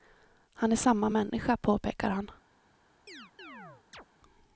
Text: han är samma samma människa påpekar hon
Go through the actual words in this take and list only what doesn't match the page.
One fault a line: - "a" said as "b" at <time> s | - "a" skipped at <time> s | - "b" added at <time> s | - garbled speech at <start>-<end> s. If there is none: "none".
- "samma" skipped at 1.1 s
- "hon" said as "han" at 2.1 s